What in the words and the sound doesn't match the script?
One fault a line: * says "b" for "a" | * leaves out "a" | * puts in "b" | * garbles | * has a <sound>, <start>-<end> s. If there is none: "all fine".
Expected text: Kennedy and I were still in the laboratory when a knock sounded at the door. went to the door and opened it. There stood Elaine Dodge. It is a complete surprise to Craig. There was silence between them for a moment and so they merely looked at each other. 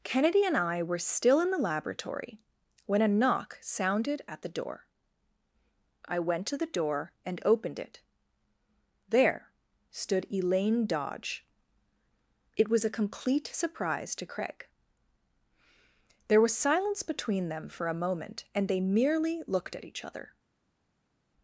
* puts in "I"
* says "was" for "is"
* leaves out "so"